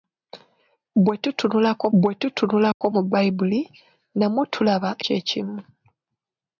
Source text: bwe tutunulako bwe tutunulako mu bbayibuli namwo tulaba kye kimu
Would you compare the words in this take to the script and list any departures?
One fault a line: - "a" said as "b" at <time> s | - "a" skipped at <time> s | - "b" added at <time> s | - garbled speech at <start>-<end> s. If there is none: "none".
none